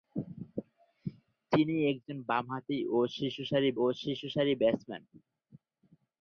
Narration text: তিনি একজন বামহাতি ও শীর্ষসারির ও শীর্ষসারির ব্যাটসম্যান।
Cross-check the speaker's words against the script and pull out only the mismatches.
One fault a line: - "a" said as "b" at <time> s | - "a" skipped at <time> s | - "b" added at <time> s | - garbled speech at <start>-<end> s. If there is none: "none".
none